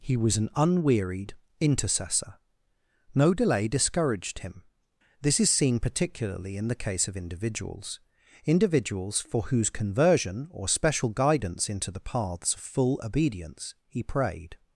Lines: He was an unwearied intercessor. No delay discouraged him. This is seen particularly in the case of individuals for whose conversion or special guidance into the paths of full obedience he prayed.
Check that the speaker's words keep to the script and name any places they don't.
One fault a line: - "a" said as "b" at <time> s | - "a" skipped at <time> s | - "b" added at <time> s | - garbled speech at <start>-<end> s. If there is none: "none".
- "individuals" added at 8.4 s